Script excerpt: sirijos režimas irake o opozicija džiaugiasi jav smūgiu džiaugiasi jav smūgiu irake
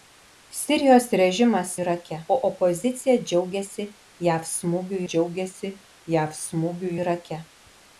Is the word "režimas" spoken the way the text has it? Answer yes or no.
yes